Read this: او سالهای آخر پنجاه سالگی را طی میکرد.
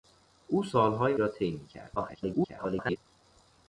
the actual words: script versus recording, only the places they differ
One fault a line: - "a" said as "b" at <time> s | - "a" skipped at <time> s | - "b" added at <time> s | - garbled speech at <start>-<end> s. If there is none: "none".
- "آخر پنجاه سالگی" skipped at 1.2 s
- garbled speech at 2.0-3.0 s